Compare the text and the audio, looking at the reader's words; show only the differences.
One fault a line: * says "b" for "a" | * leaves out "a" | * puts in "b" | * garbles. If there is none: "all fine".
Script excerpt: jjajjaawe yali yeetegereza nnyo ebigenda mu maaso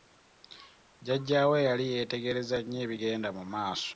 all fine